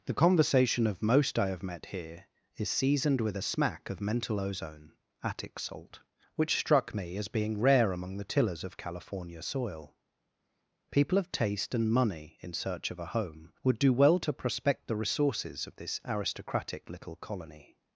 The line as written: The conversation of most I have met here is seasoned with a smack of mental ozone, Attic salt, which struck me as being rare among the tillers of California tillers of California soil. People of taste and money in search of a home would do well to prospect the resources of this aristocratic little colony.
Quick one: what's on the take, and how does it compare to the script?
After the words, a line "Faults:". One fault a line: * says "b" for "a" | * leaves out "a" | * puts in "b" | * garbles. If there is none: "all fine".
The conversation of most I have met here is seasoned with a smack of mental ozone, Attic salt, which struck me as being rare among the tillers of California soil. People of taste and money in search of a home would do well to prospect the resources of this aristocratic little colony.
Faults:
* leaves out "tillers of California"